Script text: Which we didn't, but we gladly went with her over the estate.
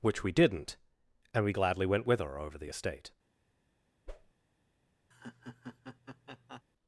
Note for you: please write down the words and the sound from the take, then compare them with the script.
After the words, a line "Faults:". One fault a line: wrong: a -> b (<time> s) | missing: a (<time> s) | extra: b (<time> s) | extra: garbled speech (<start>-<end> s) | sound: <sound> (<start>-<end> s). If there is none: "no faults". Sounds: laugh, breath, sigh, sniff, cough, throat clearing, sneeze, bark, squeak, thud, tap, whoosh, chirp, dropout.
Which we didn't, and we gladly went with her over the estate.
Faults:
wrong: but -> and (1.3 s)
sound: whoosh (4.1-4.3 s)
sound: laugh (5.1-6.6 s)